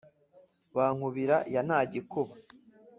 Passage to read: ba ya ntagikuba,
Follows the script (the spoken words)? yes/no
no